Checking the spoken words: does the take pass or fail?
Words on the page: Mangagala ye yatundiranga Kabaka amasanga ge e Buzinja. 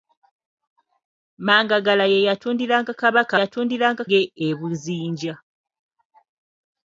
fail